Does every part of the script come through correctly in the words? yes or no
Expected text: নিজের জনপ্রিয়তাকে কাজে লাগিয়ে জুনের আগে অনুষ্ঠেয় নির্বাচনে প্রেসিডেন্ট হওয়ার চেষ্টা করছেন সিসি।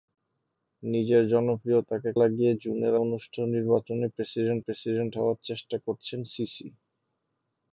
no